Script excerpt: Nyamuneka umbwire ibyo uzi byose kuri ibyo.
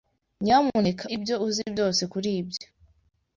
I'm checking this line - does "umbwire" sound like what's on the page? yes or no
no